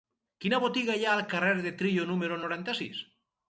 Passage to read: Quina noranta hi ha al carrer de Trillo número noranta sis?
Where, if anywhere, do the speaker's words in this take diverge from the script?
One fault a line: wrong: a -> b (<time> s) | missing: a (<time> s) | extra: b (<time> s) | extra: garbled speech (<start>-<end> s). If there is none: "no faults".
wrong: noranta -> botiga (0.6 s)